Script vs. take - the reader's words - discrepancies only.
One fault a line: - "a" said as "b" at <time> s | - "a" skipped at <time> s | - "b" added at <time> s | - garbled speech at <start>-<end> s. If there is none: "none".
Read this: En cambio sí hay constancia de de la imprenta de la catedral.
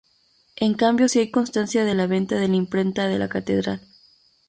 - "la venta" added at 1.9 s